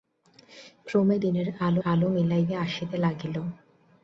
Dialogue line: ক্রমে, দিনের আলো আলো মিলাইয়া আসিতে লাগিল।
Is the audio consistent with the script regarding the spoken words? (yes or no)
yes